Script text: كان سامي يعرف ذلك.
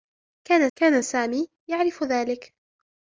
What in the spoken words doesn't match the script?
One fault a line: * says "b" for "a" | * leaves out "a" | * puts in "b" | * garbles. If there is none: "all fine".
* puts in "كان"